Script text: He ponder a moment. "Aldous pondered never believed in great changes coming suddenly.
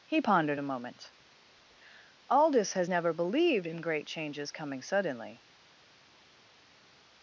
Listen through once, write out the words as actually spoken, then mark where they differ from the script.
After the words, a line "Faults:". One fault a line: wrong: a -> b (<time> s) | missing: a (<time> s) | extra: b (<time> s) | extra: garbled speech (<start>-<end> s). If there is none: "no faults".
He pondered a moment. "Aldous has never believed in great changes coming suddenly.
Faults:
wrong: ponder -> pondered (0.2 s)
wrong: pondered -> has (2.7 s)